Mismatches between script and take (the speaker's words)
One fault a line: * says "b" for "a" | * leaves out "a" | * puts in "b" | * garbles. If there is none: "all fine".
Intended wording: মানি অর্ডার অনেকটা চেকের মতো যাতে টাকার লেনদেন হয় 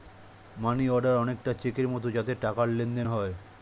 all fine